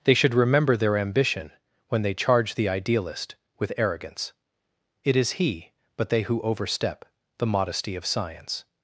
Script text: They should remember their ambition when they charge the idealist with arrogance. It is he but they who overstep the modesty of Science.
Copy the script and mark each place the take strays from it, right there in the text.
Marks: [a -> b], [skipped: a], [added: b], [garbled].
They should remember their ambition when they charge the idealist with arrogance. It is he but they who overstep the modesty of Science.